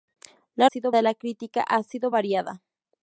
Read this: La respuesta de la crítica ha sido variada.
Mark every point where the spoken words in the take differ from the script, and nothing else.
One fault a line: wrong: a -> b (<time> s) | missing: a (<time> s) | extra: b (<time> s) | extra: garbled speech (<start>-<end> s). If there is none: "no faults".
wrong: respuesta -> sido (0.6 s)